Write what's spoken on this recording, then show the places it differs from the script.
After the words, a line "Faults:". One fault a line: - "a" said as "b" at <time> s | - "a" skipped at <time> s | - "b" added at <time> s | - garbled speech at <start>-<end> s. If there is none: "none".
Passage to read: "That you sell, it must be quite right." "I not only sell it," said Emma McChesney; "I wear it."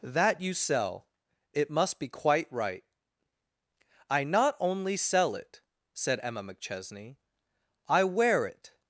"That you sell, it must be quite right." "I not only sell it," said Emma McChesney; "I wear it."
Faults:
none